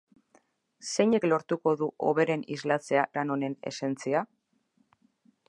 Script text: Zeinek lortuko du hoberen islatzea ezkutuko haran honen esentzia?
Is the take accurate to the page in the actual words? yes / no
no